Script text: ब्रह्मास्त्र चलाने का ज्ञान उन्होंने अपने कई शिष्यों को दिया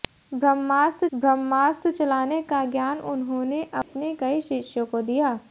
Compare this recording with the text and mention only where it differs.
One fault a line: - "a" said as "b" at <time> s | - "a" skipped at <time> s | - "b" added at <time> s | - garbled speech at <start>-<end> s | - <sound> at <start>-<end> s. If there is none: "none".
- "ब्रह्मास्त्र" added at 1.1 s
- dropout at 3.8-3.9 s